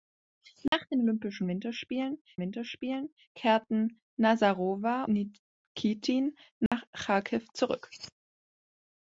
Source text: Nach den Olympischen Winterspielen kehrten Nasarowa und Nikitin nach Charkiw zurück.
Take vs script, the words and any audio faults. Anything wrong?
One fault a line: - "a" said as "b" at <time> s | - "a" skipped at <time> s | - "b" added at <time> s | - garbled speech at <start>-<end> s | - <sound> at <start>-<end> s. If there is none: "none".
- dropout at 0.7-0.7 s
- "Winterspielen" added at 2.4 s
- "und" skipped at 5.0 s
- dropout at 6.7-6.7 s